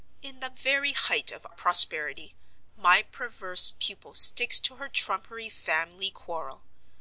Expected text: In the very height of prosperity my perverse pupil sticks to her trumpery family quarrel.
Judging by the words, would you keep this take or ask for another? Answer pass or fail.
pass